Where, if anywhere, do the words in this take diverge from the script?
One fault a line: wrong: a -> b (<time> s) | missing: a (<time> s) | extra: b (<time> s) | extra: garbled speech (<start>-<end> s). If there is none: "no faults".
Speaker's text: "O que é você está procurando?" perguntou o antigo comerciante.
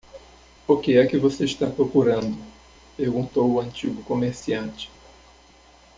extra: que (1.0 s)